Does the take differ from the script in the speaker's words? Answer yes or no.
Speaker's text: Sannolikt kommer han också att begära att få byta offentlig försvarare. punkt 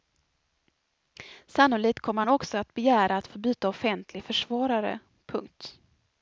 no